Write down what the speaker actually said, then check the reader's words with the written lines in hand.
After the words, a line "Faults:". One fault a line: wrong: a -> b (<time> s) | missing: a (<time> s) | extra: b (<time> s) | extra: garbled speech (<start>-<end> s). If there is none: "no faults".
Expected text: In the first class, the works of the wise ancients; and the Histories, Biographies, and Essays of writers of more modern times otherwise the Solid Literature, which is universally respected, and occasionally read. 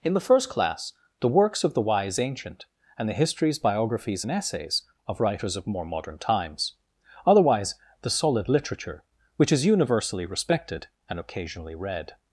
In the first class, the works of the wise ancient; and the Histories, Biographies, and Essays of writers of more modern times otherwise the Solid Literature, which is universally respected, and occasionally read.
Faults:
wrong: ancients -> ancient (2.2 s)